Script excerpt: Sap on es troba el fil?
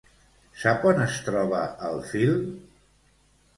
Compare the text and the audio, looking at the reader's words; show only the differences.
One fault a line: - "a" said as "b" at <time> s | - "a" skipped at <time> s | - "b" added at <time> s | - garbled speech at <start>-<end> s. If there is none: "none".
none